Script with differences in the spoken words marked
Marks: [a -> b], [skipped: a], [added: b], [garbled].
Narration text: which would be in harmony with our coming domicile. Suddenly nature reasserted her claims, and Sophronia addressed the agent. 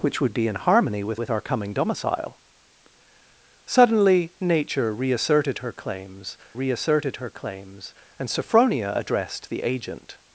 which would be in harmony with [added: with] our coming domicile. Suddenly nature reasserted her claims, [added: reasserted her claims] and Sophronia addressed the agent.